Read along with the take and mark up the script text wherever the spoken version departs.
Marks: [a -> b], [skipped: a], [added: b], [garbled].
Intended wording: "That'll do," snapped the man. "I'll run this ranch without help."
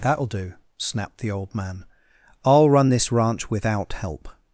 "That'll do," snapped the [added: old] man. "I'll run this ranch without help."